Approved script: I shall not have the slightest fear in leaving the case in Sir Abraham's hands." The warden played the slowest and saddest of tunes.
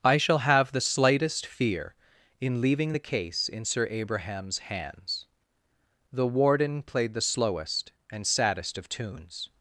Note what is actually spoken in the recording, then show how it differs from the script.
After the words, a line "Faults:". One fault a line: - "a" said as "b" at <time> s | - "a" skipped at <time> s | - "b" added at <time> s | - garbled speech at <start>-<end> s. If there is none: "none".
I shall have the slightest fear in leaving the case in Sir Abraham's hands." The warden played the slowest and saddest of tunes.
Faults:
- "not" skipped at 0.4 s